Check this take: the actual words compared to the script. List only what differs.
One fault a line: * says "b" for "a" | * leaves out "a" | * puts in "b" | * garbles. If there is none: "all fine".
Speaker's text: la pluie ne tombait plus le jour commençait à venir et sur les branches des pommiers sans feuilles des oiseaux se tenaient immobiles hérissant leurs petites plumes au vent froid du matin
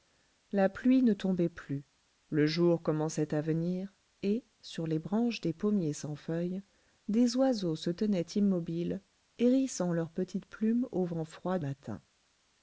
* leaves out "du"